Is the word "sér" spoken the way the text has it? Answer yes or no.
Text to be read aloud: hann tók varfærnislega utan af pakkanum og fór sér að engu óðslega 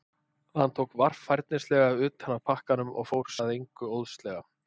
no